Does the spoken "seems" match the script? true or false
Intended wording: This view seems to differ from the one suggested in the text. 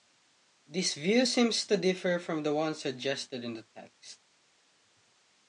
true